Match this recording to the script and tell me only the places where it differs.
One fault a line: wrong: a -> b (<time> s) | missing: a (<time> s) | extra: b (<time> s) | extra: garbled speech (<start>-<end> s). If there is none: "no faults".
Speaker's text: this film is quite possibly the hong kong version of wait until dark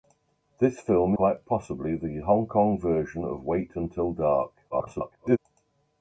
missing: is (1.1 s)
extra: garbled speech (4.7-5.4 s)